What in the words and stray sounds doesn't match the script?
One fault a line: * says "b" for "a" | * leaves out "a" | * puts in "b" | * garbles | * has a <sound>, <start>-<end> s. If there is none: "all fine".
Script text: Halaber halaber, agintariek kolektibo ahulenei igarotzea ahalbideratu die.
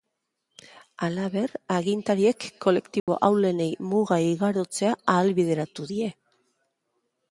* leaves out "halaber"
* has a dropout, 3.0-3.1 s
* puts in "muga"